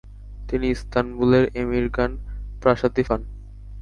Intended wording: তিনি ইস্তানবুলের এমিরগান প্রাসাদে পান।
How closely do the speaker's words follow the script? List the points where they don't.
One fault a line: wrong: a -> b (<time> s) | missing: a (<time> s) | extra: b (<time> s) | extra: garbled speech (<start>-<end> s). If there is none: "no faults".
no faults